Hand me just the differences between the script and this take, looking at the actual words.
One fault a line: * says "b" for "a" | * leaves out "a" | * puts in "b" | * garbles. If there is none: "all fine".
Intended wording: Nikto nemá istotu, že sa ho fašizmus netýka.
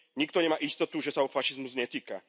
all fine